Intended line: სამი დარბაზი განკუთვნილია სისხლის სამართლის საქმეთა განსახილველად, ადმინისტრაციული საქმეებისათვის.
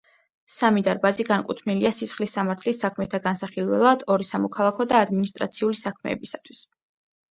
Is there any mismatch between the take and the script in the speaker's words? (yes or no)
yes